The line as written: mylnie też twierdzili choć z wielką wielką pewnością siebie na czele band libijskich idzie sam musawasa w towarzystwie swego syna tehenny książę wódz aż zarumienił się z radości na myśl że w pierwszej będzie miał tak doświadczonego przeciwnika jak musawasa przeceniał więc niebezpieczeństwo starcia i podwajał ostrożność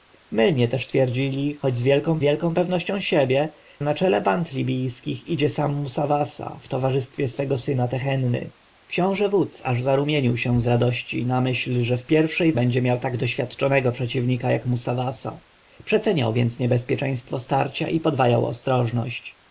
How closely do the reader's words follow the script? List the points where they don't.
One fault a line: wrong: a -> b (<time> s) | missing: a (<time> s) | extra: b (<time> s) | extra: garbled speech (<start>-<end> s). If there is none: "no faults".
no faults